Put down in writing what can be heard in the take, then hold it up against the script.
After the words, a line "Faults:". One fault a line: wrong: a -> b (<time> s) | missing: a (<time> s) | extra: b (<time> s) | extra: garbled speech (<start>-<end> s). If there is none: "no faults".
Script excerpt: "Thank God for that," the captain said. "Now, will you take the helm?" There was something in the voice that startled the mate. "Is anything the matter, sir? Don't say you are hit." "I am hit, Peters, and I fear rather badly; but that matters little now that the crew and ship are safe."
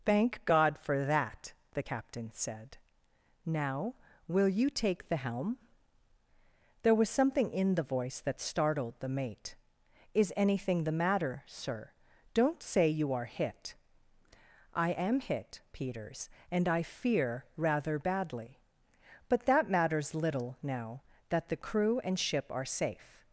"Thank God for that," the captain said. "Now, will you take the helm?" There was something in the voice that startled the mate. "Is anything the matter, sir? Don't say you are hit." "I am hit, Peters, and I fear rather badly; but that matters little now that the crew and ship are safe."
Faults:
no faults